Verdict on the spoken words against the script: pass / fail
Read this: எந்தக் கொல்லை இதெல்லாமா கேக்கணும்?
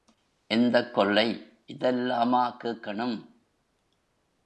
pass